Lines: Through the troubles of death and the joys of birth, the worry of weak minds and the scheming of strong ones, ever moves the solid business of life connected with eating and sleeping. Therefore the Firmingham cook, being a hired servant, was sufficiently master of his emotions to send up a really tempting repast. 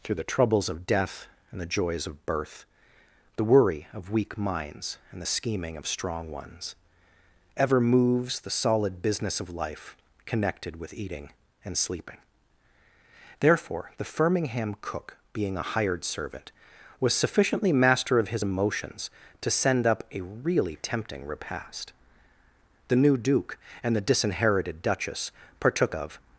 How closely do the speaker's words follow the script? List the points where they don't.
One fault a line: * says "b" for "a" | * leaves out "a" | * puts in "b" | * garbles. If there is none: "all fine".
* puts in "The new Duke and the disinherited Duchess partook of"